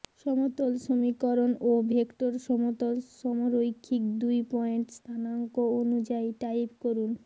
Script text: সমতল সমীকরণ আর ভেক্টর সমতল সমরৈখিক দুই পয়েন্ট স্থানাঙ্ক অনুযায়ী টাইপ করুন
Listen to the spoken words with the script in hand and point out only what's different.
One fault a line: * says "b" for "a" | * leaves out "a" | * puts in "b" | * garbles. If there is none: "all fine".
* says "ও" for "আর"